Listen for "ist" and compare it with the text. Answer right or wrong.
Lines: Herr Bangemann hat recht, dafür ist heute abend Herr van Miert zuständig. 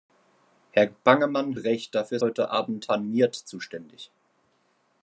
wrong